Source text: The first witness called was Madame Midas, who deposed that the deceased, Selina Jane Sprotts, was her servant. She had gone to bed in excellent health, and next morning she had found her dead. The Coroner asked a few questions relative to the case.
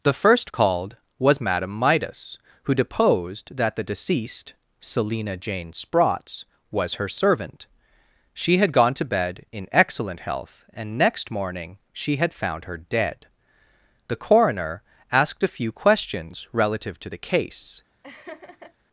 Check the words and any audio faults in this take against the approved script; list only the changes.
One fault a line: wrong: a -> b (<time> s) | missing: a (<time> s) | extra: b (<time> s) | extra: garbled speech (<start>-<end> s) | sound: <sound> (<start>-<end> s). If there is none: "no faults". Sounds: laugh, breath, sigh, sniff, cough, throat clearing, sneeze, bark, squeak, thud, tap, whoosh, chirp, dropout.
missing: witness (0.5 s)
sound: laugh (18.0-18.7 s)